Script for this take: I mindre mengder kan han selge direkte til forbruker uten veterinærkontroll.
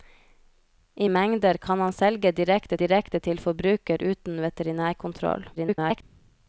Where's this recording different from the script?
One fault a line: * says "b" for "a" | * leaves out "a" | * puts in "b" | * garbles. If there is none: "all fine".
* leaves out "mindre"
* puts in "direkte"
* garbles